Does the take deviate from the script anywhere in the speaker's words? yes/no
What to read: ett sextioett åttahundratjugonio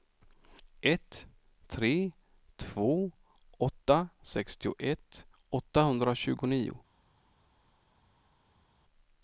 yes